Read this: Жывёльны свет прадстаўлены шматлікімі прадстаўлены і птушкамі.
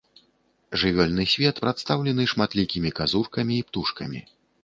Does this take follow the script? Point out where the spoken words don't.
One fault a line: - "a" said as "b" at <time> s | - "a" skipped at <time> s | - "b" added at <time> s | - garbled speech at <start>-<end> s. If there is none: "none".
- "прадстаўлены" said as "казуркамі" at 3.0 s